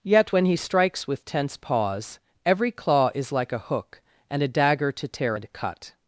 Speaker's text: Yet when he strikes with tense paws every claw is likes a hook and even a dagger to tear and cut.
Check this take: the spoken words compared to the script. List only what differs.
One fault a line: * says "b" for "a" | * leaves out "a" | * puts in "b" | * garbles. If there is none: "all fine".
* says "like" for "likes"
* leaves out "even"